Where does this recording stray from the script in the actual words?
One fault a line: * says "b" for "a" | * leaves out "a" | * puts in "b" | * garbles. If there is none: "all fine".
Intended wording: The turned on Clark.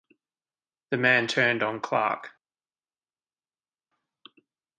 * puts in "man"